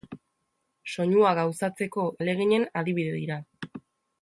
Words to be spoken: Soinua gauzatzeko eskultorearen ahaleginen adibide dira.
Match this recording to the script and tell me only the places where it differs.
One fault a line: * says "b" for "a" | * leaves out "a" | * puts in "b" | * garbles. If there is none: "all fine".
* leaves out "eskultorearen"